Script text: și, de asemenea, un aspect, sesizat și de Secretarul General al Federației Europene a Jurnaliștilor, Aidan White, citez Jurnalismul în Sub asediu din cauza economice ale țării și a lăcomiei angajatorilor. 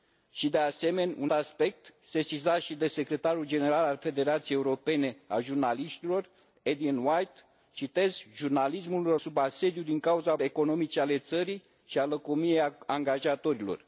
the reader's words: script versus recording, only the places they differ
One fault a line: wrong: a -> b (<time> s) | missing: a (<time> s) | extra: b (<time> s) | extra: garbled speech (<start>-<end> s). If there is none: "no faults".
no faults